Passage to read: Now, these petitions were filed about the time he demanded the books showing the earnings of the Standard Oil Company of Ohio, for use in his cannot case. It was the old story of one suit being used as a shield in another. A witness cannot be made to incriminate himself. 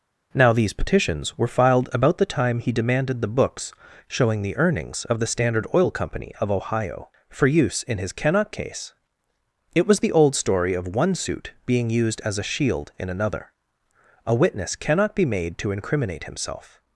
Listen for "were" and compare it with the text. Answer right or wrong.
right